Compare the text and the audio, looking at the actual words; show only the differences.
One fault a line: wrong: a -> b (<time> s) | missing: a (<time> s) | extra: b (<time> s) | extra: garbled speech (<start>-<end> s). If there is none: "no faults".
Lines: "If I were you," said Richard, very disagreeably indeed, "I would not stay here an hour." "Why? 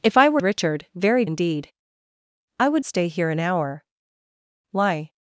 missing: you said (0.4 s)
missing: disagreeably (1.2 s)
missing: not (2.8 s)